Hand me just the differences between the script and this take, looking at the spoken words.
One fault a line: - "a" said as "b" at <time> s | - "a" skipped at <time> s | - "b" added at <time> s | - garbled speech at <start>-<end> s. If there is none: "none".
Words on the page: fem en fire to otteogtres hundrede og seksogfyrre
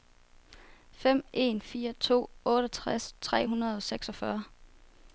- "tre" added at 3.2 s